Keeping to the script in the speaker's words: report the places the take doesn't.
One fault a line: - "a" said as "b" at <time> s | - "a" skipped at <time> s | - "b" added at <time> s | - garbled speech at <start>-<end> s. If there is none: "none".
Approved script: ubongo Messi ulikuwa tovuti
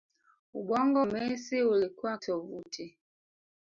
none